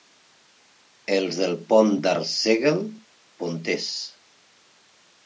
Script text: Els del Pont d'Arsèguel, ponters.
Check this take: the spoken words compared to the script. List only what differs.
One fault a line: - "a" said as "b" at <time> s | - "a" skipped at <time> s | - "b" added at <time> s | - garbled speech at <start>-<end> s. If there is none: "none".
none